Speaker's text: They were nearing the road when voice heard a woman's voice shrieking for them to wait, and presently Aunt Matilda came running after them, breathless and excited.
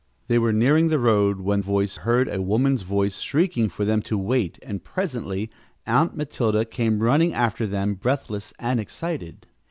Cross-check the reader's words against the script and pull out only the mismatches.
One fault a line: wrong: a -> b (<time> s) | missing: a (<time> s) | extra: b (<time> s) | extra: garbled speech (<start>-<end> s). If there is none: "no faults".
no faults